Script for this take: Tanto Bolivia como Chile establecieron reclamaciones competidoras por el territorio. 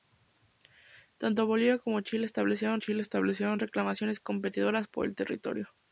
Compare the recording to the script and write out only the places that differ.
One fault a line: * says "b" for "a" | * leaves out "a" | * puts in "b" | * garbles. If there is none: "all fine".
* puts in "Chile establecieron"